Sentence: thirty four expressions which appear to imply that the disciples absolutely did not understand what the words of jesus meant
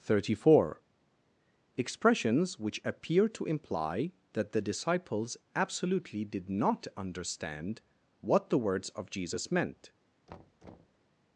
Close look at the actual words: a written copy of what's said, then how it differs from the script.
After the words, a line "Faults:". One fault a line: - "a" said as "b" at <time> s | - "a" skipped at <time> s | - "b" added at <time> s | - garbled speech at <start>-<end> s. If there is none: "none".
thirty four expressions which appear to imply that the disciples absolutely did not understand what the words of jesus meant
Faults:
none